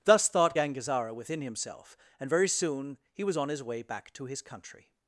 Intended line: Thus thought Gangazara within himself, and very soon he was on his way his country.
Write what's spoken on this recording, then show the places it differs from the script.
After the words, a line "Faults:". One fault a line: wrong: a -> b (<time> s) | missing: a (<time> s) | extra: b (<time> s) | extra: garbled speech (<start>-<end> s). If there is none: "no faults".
Thus thought Gangazara within himself, and very soon he was on his way back to his country.
Faults:
extra: back to (3.8 s)